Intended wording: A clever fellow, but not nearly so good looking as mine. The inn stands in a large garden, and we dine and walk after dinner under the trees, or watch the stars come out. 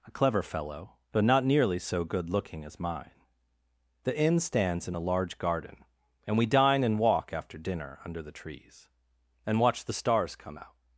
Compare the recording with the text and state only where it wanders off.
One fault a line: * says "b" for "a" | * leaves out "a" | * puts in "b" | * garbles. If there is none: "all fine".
* says "and" for "or"